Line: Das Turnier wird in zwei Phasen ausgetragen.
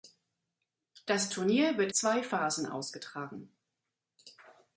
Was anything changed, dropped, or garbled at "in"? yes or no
yes